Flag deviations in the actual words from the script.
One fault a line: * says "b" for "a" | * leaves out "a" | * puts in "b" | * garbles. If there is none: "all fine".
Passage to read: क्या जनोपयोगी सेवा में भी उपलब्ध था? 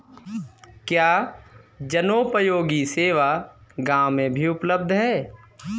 * puts in "गाँव"
* says "है" for "था"